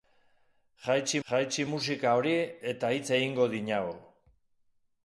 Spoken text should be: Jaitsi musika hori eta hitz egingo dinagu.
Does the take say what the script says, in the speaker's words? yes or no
no